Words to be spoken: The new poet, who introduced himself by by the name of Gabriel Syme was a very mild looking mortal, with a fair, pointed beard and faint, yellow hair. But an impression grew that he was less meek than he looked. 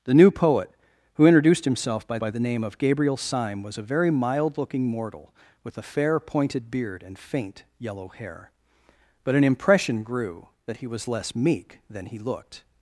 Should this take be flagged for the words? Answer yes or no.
no